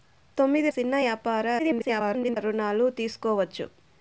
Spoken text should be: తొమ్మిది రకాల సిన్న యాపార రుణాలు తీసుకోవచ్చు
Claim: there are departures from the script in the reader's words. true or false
true